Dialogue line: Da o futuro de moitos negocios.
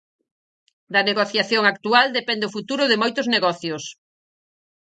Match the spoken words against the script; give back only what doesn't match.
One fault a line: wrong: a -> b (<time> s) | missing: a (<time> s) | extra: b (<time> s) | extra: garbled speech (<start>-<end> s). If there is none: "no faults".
extra: negociación actual depende (1.1 s)